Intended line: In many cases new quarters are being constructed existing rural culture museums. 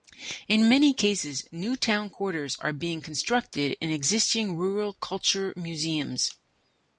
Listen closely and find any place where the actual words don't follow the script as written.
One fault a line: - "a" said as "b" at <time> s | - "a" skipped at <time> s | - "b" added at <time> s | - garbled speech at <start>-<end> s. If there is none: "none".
- "town" added at 1.8 s
- "in" added at 3.8 s